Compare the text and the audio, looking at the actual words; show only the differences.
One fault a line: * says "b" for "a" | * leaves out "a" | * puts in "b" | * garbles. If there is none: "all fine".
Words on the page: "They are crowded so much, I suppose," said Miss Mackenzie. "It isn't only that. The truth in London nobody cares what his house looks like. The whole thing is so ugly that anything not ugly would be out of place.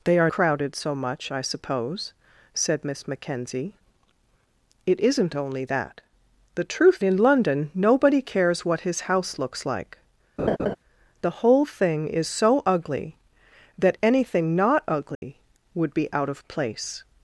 all fine